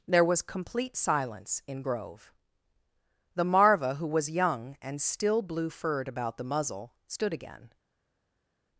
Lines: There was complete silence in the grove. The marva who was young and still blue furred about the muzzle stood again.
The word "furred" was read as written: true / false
true